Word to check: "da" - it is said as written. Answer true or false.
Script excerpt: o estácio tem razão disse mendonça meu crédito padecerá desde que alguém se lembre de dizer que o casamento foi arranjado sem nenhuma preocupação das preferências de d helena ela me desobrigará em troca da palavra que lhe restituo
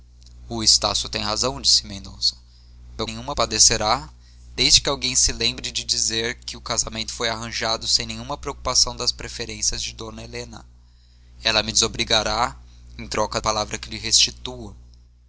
false